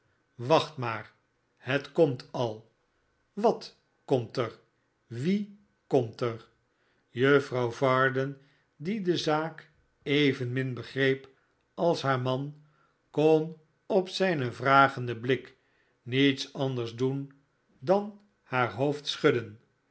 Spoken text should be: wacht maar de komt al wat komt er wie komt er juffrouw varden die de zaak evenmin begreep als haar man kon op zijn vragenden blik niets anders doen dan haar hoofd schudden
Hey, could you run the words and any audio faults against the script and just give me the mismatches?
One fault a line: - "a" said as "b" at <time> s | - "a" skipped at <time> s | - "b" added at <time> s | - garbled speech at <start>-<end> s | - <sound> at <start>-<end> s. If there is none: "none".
- "de" said as "het" at 1.6 s